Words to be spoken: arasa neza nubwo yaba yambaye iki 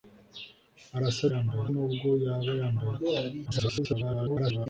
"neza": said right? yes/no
no